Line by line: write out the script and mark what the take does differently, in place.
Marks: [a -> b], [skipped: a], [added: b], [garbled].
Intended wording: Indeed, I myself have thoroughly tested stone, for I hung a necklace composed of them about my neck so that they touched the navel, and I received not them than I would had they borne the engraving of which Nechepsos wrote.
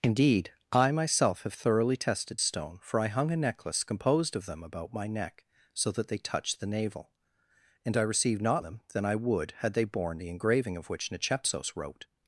Indeed, I myself have thoroughly tested stone, for I hung a necklace composed of them about my neck so that they touched the navel, and I received not them than I would had they borne the engraving of which Nechepsos wrote.